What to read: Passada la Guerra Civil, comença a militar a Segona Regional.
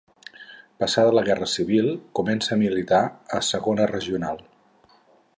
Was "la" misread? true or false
false